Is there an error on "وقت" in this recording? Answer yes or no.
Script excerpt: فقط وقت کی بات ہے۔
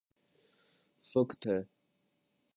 yes